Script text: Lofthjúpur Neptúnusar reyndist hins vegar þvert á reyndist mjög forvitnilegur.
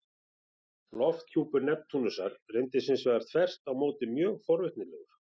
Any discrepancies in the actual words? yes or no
yes